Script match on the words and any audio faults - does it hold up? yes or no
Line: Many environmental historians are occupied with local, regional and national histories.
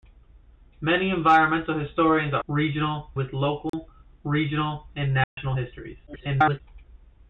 no